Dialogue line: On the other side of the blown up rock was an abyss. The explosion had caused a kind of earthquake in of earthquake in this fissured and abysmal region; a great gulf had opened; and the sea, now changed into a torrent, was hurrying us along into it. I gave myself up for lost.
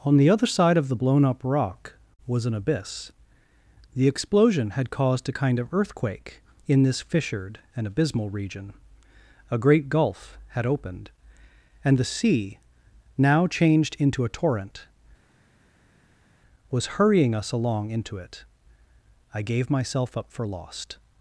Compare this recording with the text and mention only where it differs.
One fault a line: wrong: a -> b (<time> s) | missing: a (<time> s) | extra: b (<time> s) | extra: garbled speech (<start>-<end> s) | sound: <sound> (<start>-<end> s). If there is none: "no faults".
missing: of earthquake in (6.8 s)